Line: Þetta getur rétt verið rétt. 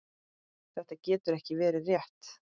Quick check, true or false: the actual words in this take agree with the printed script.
false